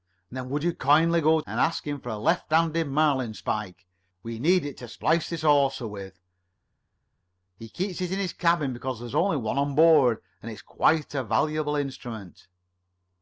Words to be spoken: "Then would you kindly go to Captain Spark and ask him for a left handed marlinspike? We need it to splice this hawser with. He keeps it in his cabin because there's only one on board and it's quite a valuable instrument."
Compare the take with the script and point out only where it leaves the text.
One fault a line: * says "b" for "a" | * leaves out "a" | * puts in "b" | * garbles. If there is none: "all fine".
* leaves out "to Captain Spark"